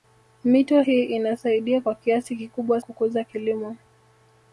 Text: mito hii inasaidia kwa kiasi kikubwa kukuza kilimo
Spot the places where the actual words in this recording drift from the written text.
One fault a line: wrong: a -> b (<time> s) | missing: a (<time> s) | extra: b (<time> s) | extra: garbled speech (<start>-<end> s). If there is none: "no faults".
no faults